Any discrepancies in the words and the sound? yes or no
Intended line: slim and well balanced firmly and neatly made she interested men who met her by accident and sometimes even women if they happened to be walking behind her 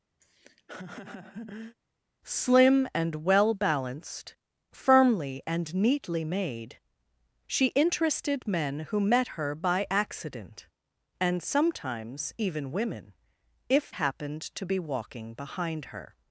yes